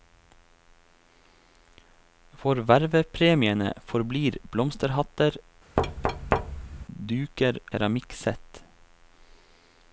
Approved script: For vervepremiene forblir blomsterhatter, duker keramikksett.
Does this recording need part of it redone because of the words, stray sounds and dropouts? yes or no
yes